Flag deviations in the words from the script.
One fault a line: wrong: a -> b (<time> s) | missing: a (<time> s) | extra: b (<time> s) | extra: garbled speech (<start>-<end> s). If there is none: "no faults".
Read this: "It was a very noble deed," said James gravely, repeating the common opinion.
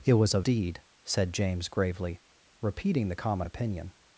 missing: very noble (0.4 s)